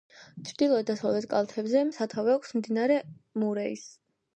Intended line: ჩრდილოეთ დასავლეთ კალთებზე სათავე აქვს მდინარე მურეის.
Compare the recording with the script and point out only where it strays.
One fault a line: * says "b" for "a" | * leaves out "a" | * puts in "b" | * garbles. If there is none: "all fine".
all fine